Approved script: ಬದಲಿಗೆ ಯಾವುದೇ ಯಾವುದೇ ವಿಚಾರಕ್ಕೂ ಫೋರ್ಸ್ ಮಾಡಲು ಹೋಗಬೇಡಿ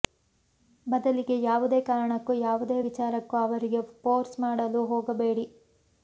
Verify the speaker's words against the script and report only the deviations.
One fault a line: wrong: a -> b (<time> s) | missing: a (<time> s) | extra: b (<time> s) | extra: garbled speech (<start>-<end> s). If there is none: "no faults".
extra: ಕಾರಣಕ್ಕೂ (1.9 s)
extra: ಅವರಿಗೆ (3.4 s)